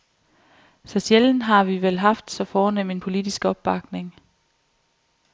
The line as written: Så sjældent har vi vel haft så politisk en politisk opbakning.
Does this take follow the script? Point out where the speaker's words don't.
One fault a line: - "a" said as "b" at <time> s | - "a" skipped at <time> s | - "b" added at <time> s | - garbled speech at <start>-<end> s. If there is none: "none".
- "politisk" said as "fornem" at 2.4 s